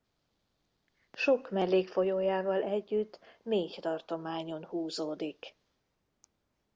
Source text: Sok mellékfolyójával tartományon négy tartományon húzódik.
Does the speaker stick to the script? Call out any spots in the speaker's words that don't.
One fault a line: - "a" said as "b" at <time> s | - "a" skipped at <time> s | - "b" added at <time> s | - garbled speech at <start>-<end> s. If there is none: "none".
- "tartományon" said as "együtt" at 2.6 s